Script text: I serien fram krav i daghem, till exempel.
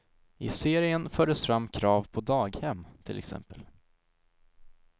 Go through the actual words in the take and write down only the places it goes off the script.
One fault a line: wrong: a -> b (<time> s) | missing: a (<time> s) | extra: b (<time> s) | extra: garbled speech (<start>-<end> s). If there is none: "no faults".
extra: fördes (1.1 s)
wrong: i -> på (2.1 s)